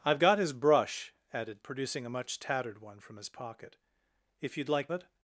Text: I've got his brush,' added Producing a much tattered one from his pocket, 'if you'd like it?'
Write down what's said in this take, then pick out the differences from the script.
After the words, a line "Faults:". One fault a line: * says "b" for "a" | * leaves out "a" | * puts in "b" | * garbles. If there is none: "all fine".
I've got his brush,' added Producing a much tattered one from his pocket, 'if you'd like it?'
Faults:
all fine